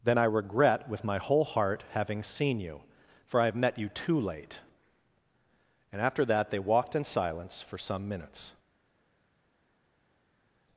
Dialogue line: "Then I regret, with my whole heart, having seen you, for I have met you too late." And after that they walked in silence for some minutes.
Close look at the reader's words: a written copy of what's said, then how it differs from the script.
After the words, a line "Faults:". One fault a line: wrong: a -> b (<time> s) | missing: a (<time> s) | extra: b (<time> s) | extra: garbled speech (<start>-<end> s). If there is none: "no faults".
"Then I regret, with my whole heart, having seen you, for I have met you too late." And after that they walked in silence for some minutes.
Faults:
no faults